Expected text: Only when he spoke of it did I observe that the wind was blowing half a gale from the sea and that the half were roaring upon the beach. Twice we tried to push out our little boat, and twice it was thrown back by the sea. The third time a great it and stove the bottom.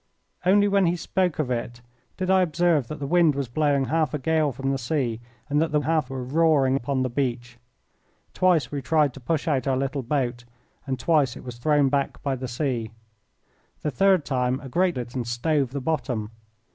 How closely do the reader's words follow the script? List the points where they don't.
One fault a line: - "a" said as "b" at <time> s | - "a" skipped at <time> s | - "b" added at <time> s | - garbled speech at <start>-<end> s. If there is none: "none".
none